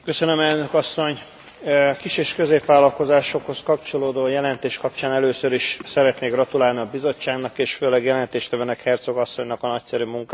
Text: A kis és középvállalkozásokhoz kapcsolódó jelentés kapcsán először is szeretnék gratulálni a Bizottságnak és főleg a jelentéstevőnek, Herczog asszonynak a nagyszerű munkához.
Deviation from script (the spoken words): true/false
false